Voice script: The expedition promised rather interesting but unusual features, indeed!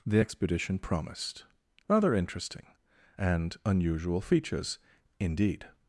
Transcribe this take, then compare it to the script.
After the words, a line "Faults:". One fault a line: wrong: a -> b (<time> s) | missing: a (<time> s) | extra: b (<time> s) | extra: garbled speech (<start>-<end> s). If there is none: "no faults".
The expedition promised rather interesting and unusual features, indeed!
Faults:
wrong: but -> and (3.2 s)